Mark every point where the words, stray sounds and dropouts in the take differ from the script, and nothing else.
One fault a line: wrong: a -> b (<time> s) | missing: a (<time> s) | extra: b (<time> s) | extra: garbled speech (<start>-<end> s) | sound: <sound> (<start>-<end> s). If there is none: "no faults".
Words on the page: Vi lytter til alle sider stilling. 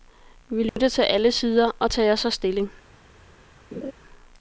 sound: dropout (0.7-0.8 s)
extra: og tager så (1.8 s)
sound: laugh (3.7-3.9 s)